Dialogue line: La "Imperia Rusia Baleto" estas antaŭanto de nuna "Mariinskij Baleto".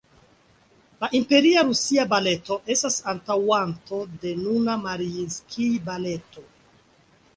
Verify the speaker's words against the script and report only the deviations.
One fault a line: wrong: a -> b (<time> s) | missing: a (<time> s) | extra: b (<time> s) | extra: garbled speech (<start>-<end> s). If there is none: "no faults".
no faults